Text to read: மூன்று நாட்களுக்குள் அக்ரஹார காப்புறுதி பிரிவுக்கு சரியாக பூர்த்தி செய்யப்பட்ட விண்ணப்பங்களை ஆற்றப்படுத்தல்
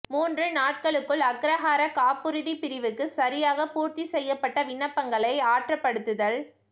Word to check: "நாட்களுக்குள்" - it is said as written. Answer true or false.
true